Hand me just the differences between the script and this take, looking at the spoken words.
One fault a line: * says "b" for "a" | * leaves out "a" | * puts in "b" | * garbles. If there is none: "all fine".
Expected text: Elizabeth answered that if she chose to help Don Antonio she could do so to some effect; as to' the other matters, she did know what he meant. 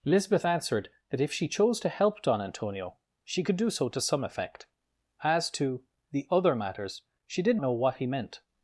all fine